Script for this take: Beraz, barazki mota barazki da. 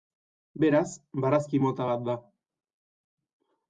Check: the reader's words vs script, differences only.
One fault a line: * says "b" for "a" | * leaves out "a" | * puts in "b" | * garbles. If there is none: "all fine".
* says "bat" for "barazki"